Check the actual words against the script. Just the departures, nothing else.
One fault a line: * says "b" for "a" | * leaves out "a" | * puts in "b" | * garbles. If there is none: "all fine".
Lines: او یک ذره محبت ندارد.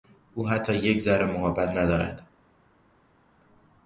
* puts in "حتی"